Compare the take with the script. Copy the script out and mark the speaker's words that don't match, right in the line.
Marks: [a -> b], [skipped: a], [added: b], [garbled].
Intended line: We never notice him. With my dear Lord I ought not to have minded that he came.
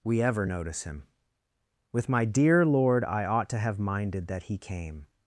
We [never -> ever] notice him. With my dear Lord I ought [skipped: not] to have minded that he came.